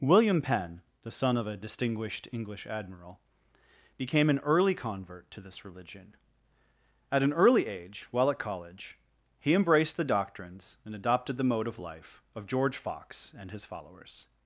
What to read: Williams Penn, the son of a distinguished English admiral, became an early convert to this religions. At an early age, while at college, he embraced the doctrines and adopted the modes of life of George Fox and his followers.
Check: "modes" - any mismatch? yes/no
yes